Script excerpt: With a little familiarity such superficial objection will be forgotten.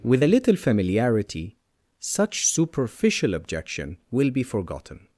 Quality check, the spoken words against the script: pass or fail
pass